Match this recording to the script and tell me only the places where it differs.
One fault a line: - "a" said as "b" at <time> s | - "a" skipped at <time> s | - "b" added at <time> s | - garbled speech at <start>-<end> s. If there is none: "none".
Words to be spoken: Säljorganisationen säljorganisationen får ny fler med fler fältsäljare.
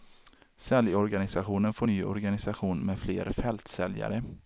- "säljorganisationen" skipped at 1.7 s
- "fler" said as "organisation" at 2.0 s